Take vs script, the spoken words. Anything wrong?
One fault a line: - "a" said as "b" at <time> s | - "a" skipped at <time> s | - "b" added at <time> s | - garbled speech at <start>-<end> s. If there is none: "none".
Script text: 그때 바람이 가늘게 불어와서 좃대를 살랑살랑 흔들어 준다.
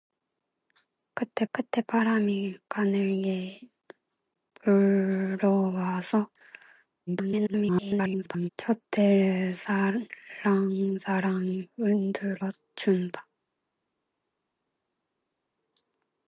- "그때" added at 1.5 s
- garbled speech at 7.1-8.5 s